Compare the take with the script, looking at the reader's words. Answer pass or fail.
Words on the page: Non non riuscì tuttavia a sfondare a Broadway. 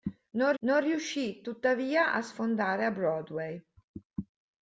pass